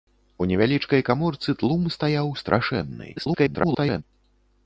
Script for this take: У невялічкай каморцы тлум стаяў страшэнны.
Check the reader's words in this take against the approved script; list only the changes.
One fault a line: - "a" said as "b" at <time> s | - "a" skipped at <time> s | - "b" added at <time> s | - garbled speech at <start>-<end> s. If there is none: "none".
- garbled speech at 3.2-4.0 s